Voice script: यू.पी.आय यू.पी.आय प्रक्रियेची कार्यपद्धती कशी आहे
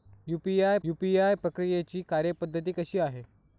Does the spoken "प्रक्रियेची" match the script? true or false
true